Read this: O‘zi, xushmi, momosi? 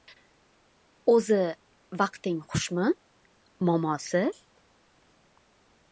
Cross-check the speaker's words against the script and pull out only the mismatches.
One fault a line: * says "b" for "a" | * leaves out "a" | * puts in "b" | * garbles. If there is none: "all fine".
* puts in "vaqting"